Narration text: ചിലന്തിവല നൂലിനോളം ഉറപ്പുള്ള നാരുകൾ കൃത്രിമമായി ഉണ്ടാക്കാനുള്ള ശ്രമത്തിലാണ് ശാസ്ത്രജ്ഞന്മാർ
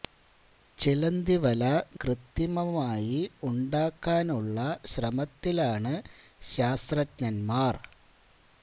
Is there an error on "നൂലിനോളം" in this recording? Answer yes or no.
yes